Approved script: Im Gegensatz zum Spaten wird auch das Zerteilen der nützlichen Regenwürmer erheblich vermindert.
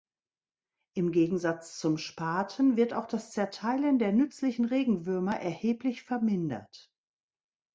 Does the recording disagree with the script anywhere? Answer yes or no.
no